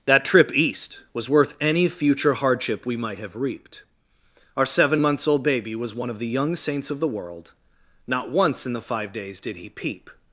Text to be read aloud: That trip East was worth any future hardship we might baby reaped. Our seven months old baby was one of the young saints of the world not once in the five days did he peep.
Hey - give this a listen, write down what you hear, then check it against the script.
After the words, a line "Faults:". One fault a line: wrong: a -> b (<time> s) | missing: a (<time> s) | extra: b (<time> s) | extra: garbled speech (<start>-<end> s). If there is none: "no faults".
That trip East was worth any future hardship we might have reaped. Our seven months old baby was one of the young saints of the world not once in the five days did he peep.
Faults:
wrong: baby -> have (3.2 s)